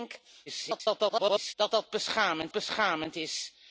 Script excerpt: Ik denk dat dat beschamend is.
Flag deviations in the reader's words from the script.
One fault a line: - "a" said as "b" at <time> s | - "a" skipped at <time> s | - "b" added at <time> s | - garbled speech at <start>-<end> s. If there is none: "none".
- garbled speech at 0.5-1.5 s
- "beschamend" added at 2.5 s